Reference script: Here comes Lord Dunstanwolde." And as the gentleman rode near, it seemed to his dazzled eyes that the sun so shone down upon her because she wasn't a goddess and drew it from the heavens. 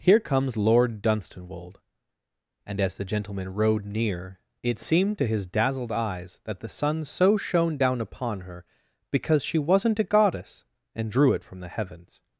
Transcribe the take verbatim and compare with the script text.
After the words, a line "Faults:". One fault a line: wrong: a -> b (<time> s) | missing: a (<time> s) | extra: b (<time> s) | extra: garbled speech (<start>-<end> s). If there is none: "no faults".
Here comes Lord Dunstanwolde." And as the gentleman rode near, it seemed to his dazzled eyes that the sun so shone down upon her because she wasn't a goddess and drew it from the heavens.
Faults:
no faults